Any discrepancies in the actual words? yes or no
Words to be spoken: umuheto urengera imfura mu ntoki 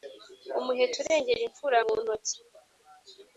no